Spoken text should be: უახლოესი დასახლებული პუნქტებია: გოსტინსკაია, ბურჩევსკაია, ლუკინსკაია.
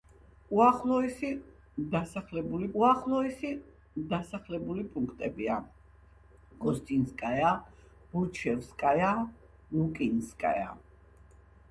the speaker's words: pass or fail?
fail